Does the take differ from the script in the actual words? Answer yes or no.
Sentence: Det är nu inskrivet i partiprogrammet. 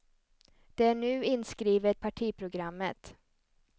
yes